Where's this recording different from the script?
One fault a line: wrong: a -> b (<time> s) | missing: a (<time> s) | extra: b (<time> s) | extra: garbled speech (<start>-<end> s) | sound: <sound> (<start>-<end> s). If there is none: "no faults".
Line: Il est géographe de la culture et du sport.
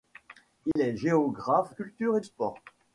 sound: dropout (0.7-0.8 s)
missing: de la (1.8 s)
missing: du (2.2 s)